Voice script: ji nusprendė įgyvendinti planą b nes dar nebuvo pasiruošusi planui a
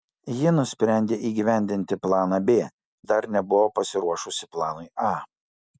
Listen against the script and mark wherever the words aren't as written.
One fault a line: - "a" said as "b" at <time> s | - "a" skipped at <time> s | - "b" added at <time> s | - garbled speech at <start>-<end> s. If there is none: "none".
- "nes" skipped at 2.6 s